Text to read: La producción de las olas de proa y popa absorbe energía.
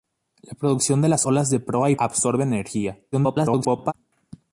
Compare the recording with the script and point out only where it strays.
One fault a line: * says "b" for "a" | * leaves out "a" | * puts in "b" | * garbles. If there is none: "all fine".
* leaves out "popa"
* garbles